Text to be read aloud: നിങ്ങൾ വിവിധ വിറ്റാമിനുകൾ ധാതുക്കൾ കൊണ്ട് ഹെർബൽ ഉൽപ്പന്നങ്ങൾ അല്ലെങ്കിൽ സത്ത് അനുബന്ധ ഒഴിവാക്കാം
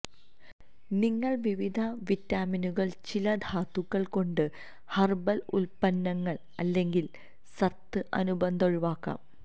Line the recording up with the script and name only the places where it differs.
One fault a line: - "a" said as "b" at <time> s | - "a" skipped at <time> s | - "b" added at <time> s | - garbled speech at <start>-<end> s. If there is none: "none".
- "ചില" added at 3.0 s